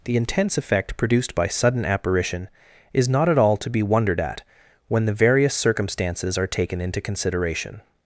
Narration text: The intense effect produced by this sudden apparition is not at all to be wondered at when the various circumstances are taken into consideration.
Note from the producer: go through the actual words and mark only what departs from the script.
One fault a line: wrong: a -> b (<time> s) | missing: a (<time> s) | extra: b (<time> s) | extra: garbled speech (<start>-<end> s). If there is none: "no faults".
missing: this (1.5 s)